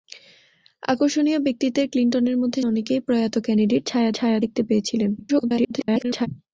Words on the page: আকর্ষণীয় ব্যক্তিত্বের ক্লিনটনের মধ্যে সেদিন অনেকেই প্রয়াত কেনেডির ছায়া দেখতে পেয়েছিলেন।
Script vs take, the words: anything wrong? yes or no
yes